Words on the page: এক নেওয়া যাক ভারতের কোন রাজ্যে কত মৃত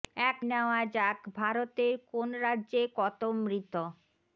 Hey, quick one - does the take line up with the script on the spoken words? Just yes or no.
yes